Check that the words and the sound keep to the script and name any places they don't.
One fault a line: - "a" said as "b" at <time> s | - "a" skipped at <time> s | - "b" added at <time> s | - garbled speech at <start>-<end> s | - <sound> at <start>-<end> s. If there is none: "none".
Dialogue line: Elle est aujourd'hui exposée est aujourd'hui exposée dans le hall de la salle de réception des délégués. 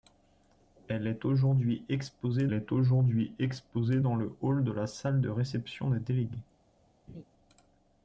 - laugh at 7.1-7.2 s